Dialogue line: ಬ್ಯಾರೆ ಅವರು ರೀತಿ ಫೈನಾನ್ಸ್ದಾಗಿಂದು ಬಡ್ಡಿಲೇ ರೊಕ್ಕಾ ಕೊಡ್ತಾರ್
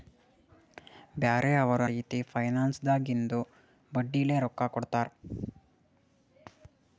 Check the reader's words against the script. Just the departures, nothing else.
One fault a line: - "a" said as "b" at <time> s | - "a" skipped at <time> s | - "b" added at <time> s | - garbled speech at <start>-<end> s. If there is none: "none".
none